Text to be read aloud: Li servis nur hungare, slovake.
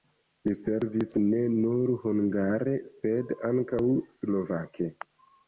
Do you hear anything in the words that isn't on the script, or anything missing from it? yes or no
yes